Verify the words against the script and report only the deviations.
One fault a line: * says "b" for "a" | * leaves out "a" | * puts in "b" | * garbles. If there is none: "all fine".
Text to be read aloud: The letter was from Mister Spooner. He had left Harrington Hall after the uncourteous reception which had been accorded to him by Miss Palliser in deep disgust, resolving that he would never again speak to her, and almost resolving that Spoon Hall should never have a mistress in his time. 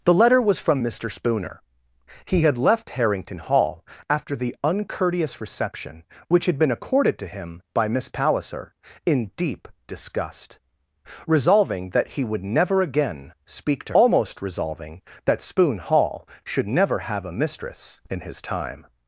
* leaves out "her and"